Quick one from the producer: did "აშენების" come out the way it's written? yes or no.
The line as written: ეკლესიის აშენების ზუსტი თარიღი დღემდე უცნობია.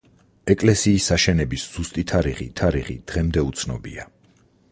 yes